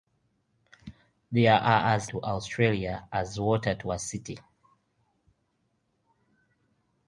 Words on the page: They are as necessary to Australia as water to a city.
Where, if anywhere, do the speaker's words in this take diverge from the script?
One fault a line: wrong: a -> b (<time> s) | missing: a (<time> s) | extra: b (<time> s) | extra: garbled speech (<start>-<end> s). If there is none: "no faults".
missing: necessary (2.1 s)